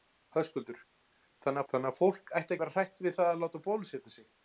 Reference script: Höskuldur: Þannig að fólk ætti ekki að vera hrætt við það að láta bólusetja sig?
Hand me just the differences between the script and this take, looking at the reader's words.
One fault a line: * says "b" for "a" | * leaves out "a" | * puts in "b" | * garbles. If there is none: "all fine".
* puts in "Þannig"
* leaves out "ekki"